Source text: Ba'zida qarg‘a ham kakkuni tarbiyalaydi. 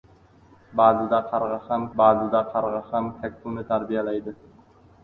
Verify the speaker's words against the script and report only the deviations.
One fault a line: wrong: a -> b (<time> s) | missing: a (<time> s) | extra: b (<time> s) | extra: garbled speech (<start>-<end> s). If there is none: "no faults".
extra: ba'zida qarg‘a ham (2.0 s)